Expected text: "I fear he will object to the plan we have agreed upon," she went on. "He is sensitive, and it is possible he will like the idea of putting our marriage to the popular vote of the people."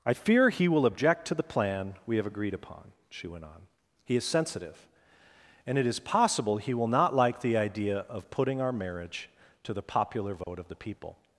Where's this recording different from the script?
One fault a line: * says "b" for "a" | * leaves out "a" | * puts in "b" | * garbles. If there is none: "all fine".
* puts in "not"